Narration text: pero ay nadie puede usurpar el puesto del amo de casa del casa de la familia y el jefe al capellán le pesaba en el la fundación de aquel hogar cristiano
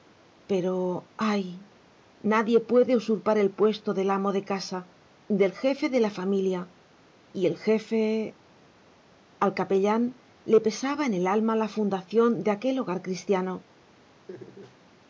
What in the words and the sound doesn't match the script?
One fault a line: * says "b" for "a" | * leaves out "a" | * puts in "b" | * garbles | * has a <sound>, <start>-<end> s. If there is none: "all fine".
* says "jefe" for "casa"
* puts in "alma"
* has a laugh, 14.3-14.8 s